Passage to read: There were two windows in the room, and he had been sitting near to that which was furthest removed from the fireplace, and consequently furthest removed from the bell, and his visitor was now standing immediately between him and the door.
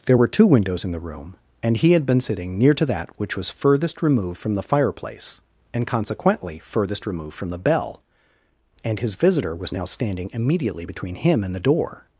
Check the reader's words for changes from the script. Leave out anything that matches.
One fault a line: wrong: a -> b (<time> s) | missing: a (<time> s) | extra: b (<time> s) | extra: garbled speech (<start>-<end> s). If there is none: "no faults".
no faults